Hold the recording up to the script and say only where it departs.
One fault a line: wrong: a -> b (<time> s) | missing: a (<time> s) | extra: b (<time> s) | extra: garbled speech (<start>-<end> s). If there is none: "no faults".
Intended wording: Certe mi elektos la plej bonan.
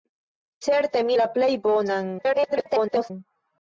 missing: elektos (1.2 s)
extra: garbled speech (2.2-3.1 s)